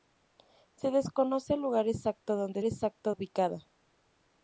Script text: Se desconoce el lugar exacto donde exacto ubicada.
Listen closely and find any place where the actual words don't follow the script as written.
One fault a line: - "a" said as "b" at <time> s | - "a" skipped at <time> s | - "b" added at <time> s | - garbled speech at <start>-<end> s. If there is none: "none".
none